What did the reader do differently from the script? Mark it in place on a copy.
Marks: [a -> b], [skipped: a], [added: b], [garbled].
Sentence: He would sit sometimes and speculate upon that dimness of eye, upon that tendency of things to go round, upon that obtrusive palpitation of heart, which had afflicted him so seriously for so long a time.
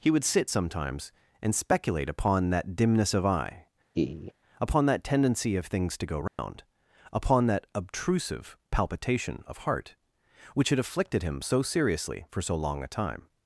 He would sit sometimes and speculate upon that dimness of eye, upon that tendency of things to go round, upon that obtrusive palpitation of heart, which had afflicted him so seriously for so long a time.